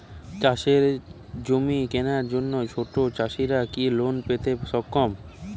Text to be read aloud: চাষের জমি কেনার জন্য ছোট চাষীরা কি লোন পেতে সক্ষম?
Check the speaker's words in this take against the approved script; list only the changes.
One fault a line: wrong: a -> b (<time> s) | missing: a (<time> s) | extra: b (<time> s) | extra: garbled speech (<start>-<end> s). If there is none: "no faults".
no faults